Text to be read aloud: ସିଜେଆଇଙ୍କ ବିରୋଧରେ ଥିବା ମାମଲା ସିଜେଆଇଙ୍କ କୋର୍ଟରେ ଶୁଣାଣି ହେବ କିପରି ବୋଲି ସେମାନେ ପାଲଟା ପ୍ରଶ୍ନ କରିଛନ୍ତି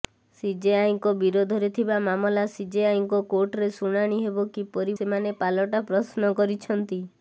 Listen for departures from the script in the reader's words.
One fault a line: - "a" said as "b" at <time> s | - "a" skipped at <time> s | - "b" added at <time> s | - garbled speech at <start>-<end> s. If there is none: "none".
- "ବୋଲି" skipped at 5.0 s